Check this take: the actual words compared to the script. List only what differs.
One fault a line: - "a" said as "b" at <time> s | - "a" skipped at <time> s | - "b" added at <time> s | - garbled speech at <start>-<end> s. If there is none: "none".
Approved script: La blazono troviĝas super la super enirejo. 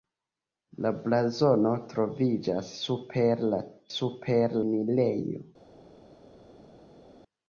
none